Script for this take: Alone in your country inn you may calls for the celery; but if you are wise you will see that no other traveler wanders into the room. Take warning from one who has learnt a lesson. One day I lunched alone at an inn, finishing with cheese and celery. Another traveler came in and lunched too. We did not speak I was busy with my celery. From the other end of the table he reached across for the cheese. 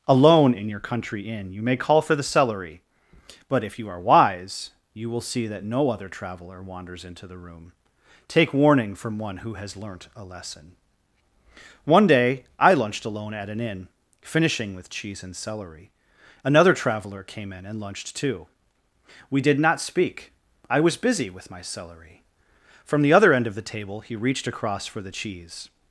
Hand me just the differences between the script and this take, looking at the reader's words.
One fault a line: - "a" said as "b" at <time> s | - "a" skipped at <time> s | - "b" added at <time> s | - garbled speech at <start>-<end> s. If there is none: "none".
- "calls" said as "call" at 1.8 s